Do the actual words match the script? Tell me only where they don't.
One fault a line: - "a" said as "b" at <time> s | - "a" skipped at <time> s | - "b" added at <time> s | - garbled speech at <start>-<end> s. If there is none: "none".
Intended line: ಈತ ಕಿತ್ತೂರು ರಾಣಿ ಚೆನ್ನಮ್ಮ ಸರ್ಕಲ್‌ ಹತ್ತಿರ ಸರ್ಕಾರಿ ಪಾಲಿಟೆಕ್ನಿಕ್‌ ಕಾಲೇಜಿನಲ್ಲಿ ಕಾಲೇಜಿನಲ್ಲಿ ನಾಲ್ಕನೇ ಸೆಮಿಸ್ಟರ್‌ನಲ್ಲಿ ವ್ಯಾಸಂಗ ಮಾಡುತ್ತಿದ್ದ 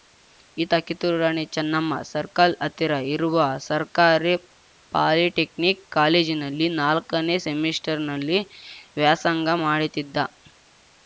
- "ಇರುವ" added at 3.1 s
- "ಕಾಲೇಜಿನಲ್ಲಿ" skipped at 6.7 s